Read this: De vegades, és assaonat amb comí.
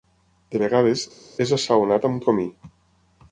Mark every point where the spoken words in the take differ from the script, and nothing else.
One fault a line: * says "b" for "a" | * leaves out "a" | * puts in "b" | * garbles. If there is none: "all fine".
all fine